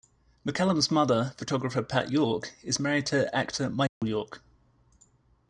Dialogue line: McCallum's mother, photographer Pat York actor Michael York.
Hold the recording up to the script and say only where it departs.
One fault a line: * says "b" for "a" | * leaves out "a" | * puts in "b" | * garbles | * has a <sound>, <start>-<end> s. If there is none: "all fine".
* puts in "is married to"
* has a dropout, 3.9-4.0 s